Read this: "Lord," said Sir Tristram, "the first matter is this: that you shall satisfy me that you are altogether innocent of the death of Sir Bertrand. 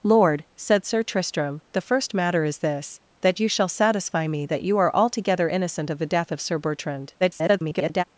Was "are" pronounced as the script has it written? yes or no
yes